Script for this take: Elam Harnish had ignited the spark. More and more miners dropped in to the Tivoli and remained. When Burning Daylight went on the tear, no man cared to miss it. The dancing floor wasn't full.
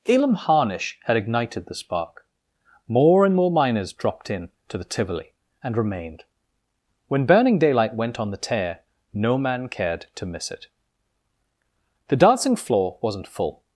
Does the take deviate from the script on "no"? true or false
false